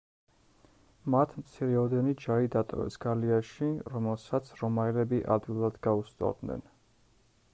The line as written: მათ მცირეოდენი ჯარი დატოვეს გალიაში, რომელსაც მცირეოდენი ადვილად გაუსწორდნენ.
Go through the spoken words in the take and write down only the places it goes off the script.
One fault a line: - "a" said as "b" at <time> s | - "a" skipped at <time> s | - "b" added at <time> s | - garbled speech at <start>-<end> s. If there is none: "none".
- "მცირეოდენი" said as "რომაელები" at 4.6 s